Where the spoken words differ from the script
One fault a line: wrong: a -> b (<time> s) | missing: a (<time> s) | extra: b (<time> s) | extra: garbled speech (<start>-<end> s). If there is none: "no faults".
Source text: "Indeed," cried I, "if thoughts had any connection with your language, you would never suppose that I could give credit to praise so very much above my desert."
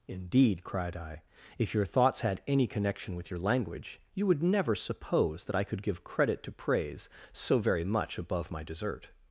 extra: your (1.8 s)